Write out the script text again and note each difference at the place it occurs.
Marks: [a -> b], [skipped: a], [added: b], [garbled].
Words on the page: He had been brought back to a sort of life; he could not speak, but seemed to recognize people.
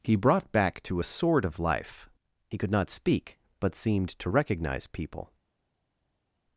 He [skipped: had been] brought back to a sort of life; he could not speak, but seemed to recognize people.